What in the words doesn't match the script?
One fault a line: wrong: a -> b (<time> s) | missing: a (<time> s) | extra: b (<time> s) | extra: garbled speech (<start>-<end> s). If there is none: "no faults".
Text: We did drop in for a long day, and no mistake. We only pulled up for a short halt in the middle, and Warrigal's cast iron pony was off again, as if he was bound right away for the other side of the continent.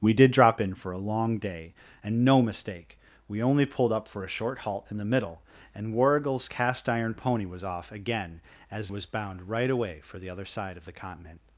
missing: if he (8.9 s)